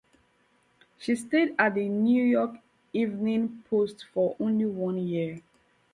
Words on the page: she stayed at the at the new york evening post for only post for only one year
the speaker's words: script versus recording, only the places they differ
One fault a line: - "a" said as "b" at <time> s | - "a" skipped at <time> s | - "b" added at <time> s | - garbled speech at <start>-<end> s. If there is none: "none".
- "at the" skipped at 1.9 s
- "post for only" skipped at 4.7 s